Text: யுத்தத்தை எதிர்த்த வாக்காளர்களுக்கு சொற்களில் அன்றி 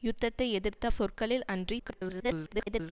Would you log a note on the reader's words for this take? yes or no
yes